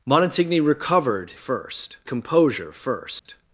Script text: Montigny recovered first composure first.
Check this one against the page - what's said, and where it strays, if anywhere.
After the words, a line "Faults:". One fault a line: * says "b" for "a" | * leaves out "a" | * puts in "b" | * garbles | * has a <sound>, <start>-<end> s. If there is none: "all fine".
Montigny recovered first composure first.
Faults:
* has a dropout, 3.2-3.3 s